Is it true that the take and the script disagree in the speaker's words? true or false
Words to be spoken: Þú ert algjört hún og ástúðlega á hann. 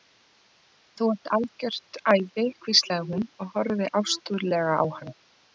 true